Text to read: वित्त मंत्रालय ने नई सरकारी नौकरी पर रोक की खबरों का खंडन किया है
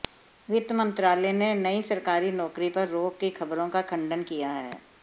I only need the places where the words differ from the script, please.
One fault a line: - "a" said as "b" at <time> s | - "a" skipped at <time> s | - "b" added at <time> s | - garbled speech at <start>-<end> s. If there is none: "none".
none